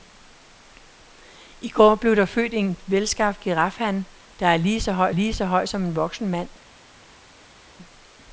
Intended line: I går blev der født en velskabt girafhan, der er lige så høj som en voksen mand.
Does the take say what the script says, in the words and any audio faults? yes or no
no